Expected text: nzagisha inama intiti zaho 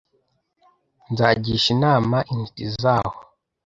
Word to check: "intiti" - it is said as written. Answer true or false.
true